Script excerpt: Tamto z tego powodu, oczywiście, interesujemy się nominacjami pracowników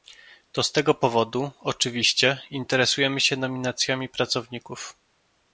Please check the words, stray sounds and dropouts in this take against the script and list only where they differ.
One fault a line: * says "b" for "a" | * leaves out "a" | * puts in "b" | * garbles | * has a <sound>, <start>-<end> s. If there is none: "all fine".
* says "To" for "Tamto"